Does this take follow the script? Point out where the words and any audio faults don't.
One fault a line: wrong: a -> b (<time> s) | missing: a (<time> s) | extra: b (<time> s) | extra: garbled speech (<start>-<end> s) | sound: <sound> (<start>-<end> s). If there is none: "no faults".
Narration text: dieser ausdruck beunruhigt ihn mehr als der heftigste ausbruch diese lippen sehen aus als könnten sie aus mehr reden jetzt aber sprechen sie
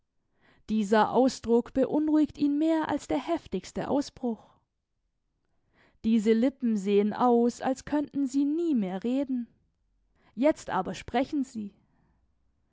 wrong: aus -> nie (8.4 s)